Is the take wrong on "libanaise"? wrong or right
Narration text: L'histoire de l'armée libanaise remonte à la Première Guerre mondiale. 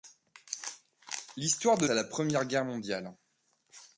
wrong